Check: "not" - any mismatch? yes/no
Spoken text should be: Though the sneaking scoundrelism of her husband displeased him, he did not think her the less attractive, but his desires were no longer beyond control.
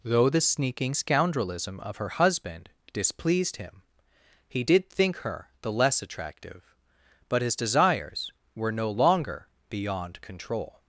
yes